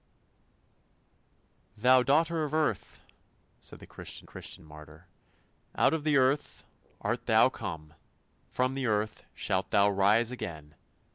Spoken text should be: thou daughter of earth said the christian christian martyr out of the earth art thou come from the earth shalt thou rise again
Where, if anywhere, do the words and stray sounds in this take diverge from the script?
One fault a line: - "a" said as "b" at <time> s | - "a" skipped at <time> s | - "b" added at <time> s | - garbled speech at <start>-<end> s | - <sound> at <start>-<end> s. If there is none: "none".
none